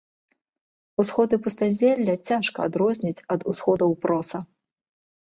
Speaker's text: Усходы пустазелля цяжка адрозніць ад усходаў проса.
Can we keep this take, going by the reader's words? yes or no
yes